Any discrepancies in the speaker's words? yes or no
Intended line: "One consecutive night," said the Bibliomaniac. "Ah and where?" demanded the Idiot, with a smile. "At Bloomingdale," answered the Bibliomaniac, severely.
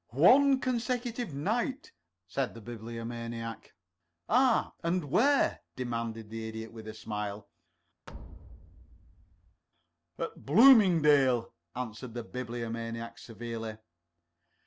no